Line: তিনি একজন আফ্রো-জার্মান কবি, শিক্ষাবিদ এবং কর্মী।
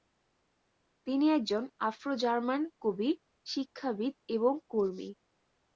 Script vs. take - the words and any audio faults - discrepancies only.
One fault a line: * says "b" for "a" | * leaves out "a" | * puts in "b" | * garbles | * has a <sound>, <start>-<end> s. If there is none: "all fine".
all fine